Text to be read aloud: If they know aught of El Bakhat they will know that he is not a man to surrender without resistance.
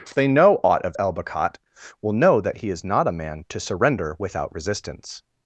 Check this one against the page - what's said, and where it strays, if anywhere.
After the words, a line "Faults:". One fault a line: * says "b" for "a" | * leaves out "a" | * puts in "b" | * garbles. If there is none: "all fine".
If they know aught of El Bakhat will know that he is not a man to surrender without resistance.
Faults:
* leaves out "they"